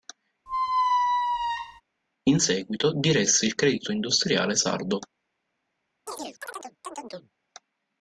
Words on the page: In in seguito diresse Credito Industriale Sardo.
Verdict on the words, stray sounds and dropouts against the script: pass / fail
fail